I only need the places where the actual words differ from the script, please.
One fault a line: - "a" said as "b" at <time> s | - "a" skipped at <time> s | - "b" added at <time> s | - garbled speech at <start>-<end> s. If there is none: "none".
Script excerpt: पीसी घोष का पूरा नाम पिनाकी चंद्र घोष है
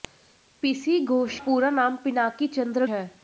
- "का" skipped at 1.4 s
- "घोष" skipped at 2.9 s